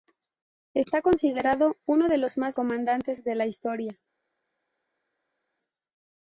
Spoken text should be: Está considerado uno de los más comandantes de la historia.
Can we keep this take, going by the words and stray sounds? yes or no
yes